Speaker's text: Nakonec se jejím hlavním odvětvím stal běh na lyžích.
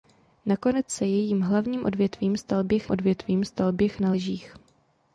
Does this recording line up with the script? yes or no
no